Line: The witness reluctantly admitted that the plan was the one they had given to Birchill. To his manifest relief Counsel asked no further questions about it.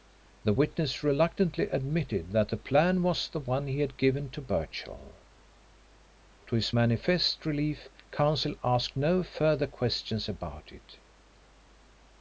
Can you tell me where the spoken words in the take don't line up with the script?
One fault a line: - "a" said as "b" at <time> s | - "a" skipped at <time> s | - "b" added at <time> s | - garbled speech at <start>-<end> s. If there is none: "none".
- "they" said as "he" at 3.7 s